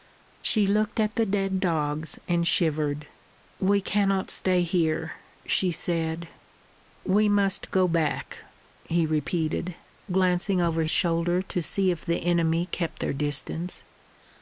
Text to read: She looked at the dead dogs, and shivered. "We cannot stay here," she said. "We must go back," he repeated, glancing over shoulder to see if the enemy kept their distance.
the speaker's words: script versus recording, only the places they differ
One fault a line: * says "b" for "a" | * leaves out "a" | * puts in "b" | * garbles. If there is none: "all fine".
all fine